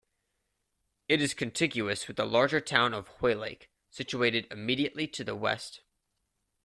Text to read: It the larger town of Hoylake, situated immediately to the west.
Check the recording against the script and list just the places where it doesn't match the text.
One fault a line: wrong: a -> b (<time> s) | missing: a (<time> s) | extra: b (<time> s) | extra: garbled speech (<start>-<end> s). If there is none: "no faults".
extra: is contiguous with (1.2 s)